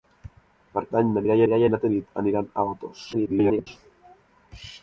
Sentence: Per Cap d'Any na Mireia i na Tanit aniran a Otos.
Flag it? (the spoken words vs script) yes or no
yes